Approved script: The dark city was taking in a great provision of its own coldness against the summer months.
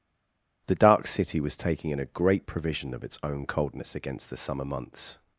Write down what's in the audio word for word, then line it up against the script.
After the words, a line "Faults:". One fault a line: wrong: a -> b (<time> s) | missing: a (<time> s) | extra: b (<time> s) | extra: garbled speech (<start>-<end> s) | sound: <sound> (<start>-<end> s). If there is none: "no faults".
The dark city was taking in a great provision of its own coldness against the summer months.
Faults:
no faults